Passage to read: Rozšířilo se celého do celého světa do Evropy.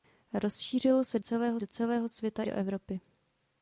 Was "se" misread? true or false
false